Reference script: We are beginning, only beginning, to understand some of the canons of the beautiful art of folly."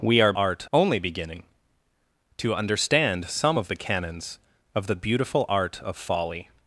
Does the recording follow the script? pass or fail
fail